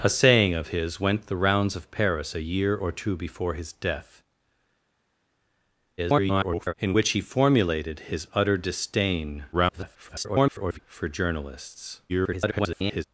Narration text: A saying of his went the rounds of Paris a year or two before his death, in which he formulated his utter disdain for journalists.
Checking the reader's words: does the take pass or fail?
fail